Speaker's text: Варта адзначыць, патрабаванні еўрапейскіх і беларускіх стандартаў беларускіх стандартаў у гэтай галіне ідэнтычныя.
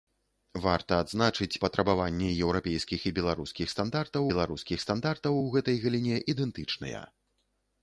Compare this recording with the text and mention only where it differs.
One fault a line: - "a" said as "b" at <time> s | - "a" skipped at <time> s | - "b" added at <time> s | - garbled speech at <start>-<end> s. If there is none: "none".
none